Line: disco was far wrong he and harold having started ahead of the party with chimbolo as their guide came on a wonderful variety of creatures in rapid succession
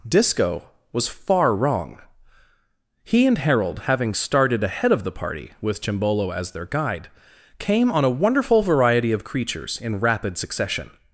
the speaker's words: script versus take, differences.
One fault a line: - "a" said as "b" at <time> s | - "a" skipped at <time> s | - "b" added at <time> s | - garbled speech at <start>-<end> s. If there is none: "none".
none